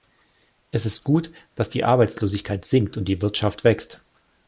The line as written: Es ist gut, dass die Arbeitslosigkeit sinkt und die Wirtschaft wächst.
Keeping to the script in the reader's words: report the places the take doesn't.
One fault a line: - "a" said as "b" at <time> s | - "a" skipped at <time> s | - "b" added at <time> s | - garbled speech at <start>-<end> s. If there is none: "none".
none